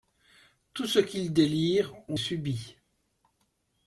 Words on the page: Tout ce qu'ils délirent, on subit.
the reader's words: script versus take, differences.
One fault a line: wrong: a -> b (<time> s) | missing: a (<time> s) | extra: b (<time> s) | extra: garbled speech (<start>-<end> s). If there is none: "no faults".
no faults